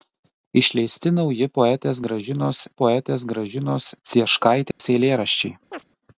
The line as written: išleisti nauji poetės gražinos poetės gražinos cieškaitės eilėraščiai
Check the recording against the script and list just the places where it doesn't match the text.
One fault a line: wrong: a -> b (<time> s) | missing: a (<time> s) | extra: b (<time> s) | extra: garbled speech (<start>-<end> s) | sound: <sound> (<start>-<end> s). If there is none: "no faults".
sound: dropout (4.7-4.8 s)
sound: chirp (5.7-5.8 s)